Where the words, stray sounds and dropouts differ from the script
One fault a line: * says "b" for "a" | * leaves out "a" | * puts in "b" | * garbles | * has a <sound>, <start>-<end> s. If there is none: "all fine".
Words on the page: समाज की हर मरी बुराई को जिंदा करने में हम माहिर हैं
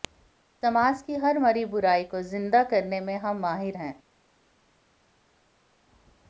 all fine